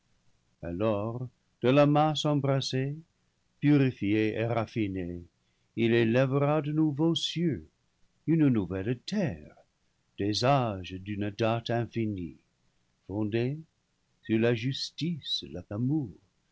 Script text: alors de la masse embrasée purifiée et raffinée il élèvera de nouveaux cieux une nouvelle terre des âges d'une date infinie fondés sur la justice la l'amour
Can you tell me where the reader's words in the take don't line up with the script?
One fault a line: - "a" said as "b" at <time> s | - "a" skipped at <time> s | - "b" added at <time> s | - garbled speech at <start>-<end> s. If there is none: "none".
none